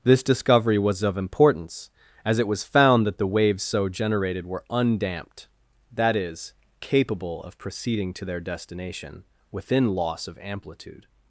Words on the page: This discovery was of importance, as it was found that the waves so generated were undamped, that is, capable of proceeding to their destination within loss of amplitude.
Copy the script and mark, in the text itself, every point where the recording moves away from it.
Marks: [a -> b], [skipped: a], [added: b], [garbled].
This discovery was of importance, as it was found that the waves so generated were undamped, that is, capable of proceeding to their destination within loss of amplitude.